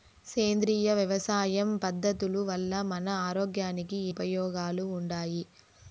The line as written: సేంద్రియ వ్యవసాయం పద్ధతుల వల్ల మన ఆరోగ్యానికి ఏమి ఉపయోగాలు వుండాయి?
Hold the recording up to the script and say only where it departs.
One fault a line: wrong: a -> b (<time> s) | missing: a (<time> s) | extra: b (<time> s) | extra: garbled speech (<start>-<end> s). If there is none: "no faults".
missing: ఏమి (4.0 s)